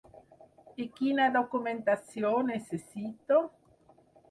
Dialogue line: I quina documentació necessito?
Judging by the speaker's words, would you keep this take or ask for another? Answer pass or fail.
pass